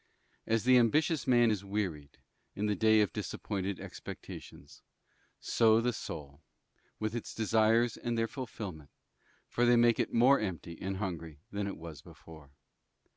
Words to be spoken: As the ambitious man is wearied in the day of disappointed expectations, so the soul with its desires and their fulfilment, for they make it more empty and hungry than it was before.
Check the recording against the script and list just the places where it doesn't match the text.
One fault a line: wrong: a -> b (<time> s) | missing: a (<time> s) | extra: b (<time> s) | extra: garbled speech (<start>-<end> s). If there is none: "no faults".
no faults